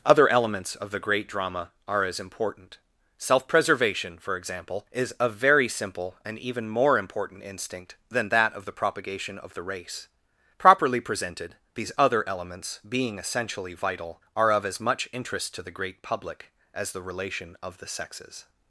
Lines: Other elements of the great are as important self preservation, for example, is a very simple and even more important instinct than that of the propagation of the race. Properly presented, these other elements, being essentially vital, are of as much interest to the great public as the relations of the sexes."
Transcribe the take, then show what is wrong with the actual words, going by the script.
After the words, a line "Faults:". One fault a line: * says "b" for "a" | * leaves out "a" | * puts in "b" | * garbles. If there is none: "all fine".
Other elements of the great drama are as important self preservation, for example, is a very simple and even more important instinct than that of the propagation of the race. Properly presented, these other elements, being essentially vital, are of as much interest to the great public as the relation of the sexes."
Faults:
* puts in "drama"
* says "relation" for "relations"